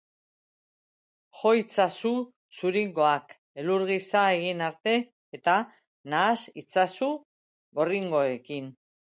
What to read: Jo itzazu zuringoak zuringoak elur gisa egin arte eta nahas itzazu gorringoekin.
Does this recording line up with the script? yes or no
no